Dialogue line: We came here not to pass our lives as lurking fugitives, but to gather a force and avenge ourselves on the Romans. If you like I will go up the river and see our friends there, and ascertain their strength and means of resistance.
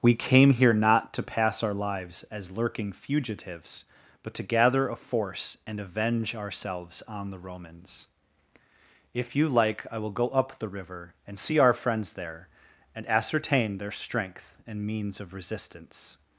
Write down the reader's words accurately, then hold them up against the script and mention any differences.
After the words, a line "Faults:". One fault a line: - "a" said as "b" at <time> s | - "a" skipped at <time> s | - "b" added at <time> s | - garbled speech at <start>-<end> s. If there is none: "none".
We came here not to pass our lives as lurking fugitives, but to gather a force and avenge ourselves on the Romans. If you like I will go up the river and see our friends there, and ascertain their strength and means of resistance.
Faults:
none